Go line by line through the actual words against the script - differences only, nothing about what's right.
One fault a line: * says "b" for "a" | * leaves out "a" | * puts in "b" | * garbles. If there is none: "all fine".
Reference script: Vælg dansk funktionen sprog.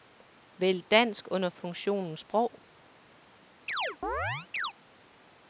* puts in "under"